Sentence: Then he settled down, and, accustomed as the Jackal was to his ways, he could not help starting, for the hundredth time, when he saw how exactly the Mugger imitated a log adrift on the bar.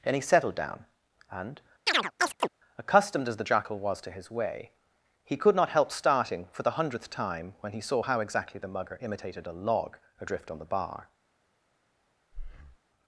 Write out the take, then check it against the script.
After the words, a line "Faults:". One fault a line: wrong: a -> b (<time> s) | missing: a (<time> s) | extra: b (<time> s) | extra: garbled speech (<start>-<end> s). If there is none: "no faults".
Then he settled down, and, accustomed as the Jackal was to his way, he could not help starting, for the hundredth time, when he saw how exactly the Mugger imitated a log adrift on the bar.
Faults:
wrong: ways -> way (4.3 s)